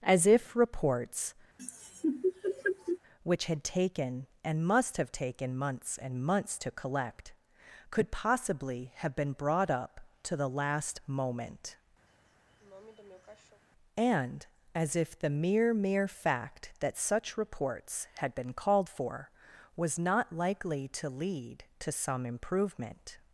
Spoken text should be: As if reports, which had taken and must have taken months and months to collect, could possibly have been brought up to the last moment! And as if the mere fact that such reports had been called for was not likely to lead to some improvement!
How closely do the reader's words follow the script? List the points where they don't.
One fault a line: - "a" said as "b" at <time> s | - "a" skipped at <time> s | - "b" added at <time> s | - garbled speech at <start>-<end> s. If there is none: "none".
- "mere" added at 15.7 s